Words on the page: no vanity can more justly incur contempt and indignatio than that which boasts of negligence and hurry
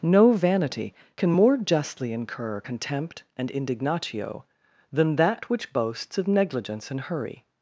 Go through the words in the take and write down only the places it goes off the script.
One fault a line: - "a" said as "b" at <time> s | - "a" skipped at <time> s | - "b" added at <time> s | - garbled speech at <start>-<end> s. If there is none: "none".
none